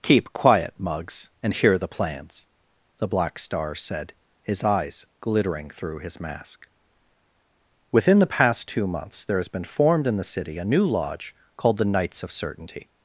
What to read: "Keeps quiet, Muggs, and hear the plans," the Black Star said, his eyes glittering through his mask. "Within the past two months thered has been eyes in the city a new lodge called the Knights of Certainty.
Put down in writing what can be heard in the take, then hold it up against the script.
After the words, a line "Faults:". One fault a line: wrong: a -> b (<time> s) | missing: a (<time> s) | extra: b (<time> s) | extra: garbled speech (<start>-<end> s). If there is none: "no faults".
"Keep quiet, Muggs, and hear the plans," the Black Star said, his eyes glittering through his mask. "Within the past two months there has been formed in the city a new lodge called the Knights of Certainty.
Faults:
wrong: Keeps -> Keep (0.0 s)
wrong: thered -> there (9.2 s)
wrong: eyes -> formed (9.6 s)